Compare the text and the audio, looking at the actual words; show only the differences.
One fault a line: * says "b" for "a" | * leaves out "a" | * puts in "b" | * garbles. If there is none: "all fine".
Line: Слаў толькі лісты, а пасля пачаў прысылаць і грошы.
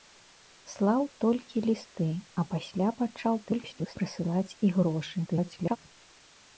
* garbles
* garbles